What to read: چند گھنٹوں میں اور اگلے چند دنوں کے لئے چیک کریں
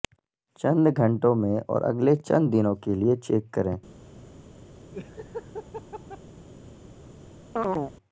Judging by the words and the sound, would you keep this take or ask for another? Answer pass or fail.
fail